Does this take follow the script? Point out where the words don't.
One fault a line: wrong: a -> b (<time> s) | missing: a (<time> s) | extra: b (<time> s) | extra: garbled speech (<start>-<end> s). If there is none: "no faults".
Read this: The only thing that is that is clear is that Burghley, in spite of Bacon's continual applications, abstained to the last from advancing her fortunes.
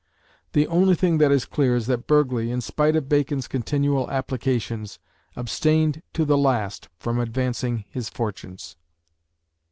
missing: that is (1.4 s)
wrong: her -> his (7.9 s)